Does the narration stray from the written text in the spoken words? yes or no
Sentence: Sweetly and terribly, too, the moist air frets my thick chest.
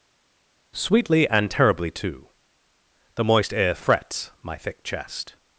no